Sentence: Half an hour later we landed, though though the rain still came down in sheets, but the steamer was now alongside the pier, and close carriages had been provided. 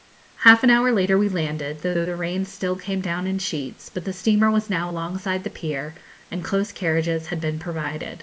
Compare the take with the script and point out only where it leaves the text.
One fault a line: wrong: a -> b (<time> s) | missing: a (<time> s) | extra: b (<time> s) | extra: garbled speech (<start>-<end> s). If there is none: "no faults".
no faults